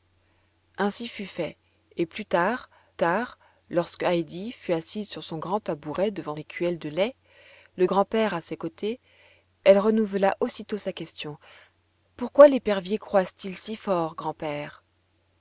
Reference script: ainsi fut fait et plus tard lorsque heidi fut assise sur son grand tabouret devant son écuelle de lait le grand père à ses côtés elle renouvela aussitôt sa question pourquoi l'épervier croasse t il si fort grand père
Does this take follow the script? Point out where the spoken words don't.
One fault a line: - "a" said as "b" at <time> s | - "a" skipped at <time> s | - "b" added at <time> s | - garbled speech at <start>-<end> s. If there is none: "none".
- "tard" added at 2.9 s
- "son" skipped at 6.4 s